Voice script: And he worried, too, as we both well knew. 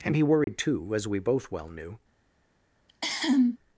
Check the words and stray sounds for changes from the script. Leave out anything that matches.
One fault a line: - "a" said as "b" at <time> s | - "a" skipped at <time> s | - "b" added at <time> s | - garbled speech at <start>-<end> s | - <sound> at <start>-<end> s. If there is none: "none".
- dropout at 0.4-0.5 s
- cough at 2.9-3.6 s